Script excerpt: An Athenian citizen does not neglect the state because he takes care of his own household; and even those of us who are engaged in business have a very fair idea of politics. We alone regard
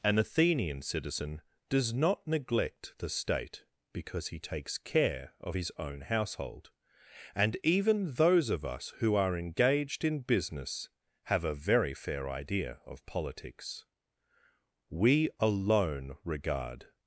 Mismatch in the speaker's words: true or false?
false